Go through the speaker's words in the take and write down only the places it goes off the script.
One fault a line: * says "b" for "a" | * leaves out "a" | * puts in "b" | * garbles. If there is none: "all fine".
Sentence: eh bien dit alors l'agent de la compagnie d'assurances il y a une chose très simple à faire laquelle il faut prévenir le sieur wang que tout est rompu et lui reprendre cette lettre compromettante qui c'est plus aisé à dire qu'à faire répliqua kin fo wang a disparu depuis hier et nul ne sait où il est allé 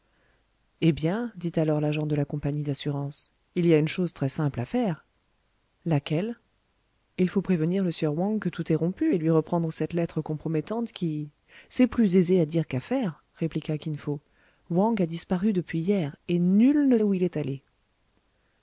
* leaves out "sait"